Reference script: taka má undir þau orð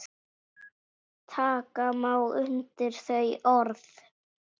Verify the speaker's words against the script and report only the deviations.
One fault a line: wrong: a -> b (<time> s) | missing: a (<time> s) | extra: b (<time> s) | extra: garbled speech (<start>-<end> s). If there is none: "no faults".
no faults